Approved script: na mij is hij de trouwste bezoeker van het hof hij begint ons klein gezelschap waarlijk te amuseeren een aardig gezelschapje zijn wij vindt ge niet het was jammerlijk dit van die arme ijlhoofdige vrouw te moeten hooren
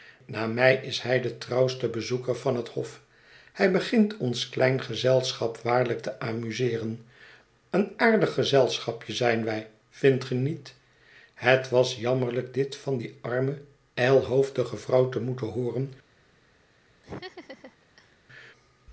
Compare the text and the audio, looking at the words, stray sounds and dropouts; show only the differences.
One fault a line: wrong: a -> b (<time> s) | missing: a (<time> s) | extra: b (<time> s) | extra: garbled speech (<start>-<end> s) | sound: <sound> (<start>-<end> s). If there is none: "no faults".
sound: laugh (17.0-18.2 s)